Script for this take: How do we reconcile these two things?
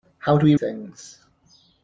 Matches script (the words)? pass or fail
fail